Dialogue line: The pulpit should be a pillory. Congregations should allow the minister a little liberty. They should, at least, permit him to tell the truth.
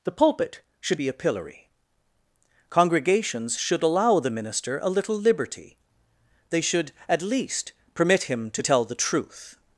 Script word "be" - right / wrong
right